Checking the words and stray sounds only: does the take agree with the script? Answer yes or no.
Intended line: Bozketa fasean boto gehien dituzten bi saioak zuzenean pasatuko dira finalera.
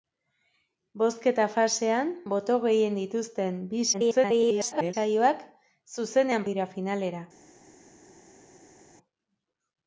no